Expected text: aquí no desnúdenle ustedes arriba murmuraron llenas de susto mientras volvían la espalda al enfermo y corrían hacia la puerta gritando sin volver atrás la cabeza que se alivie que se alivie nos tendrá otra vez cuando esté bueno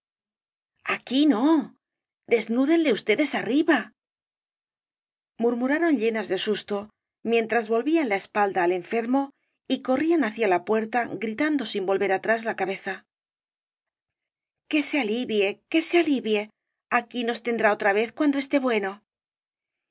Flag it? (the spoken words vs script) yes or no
yes